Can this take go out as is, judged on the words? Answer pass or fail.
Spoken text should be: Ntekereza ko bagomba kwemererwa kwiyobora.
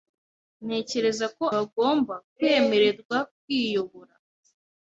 pass